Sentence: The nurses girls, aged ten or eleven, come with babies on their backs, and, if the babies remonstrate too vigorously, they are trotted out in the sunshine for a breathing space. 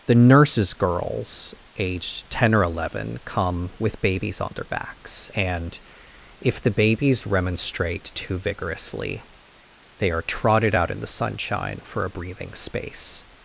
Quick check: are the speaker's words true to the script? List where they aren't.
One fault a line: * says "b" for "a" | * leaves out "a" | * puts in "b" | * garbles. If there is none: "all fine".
all fine